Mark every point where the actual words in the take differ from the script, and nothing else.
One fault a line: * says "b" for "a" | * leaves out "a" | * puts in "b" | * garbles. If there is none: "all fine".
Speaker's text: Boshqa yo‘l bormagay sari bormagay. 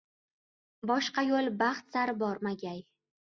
* says "baxt" for "bormagay"